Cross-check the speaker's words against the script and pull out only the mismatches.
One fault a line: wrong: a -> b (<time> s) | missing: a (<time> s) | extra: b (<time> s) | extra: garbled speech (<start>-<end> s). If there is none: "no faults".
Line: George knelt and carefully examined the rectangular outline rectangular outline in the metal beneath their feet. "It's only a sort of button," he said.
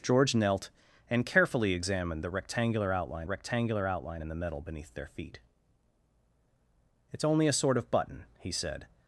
no faults